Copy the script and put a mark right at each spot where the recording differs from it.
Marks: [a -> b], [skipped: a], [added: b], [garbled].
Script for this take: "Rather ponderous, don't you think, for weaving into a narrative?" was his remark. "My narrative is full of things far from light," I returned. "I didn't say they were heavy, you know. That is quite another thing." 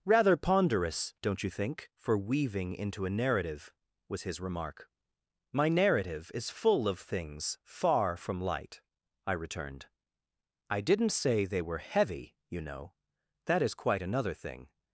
"Rather ponderous, don't you think, for weaving into a narrative?" was his remark. "My narrative is full of things far from light," I returned. "I didn't say they were heavy, you know. That is quite another thing."